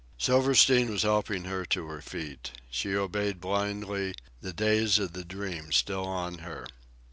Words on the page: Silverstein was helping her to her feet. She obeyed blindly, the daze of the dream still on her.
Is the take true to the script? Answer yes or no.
yes